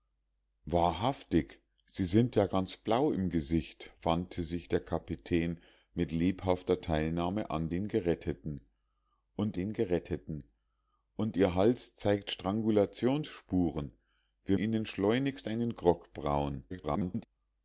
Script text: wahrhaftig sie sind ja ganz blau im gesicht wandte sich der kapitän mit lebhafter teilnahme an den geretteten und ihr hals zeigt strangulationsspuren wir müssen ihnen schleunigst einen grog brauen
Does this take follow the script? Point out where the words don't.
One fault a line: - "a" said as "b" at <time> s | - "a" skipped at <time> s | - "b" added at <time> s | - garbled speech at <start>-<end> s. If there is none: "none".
- "den geretteten und" added at 9.5 s
- "müssen" skipped at 14.6 s
- garbled speech at 16.7-17.3 s